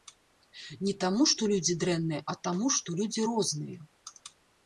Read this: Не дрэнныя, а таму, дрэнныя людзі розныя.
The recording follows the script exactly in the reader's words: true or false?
false